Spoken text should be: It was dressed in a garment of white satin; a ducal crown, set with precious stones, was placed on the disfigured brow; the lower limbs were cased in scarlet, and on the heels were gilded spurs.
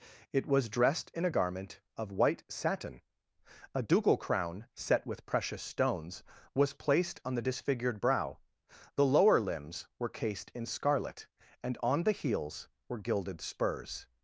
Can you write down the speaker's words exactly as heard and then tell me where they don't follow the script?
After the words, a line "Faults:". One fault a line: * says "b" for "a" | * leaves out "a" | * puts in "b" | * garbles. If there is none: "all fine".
It was dressed in a garment of white satin; a ducal crown, set with precious stones, was placed on the disfigured brow; the lower limbs were cased in scarlet, and on the heels were gilded spurs.
Faults:
all fine